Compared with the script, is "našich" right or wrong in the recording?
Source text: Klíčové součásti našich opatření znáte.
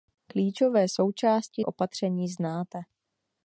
wrong